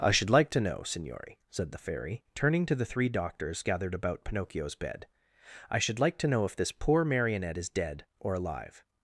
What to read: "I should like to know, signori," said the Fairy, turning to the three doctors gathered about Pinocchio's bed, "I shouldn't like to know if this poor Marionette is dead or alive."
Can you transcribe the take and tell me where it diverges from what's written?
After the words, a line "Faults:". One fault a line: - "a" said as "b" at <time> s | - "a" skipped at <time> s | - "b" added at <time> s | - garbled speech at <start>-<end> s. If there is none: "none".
"I should like to know, signori," said the Fairy, turning to the three doctors gathered about Pinocchio's bed, "I should like to know if this poor Marionette is dead or alive."
Faults:
- "shouldn't" said as "should" at 5.8 s